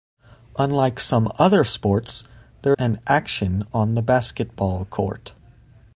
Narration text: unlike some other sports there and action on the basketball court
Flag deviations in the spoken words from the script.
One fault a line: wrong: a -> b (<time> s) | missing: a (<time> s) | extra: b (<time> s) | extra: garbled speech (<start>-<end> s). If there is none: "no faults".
no faults